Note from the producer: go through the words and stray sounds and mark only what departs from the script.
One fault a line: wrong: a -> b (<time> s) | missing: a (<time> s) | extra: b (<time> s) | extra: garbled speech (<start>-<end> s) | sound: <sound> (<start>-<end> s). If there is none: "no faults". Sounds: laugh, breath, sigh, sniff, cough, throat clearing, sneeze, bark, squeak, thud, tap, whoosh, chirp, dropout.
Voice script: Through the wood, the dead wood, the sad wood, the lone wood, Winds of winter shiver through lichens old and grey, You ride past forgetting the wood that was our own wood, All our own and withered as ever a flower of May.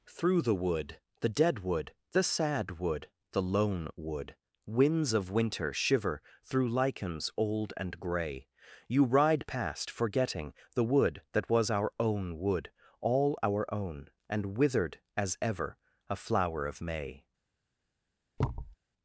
sound: thud (18.4-18.8 s)